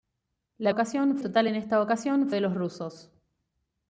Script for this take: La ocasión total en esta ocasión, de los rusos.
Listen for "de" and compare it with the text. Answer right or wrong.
right